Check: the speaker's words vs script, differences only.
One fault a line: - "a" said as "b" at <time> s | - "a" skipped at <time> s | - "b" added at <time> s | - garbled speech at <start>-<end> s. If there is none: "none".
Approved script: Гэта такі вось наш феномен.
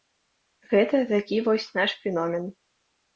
none